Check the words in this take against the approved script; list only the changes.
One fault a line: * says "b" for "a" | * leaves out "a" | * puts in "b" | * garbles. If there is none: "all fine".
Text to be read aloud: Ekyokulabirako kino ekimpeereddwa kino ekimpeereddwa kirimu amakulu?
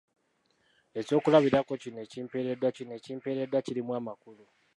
all fine